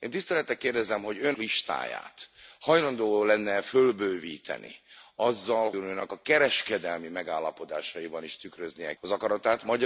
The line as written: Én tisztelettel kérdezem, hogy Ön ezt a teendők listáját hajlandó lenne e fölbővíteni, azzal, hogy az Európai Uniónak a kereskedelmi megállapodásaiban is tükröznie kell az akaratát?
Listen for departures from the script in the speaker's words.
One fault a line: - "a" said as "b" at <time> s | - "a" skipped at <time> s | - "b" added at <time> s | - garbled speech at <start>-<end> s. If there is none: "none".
- "ezt a teendők" skipped at 1.4 s
- "hogy az Európai" skipped at 5.7 s
- "kell" skipped at 9.0 s